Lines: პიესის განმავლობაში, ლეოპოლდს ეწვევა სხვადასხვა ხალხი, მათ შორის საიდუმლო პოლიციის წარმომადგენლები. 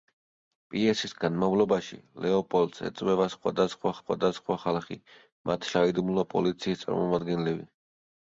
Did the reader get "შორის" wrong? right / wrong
wrong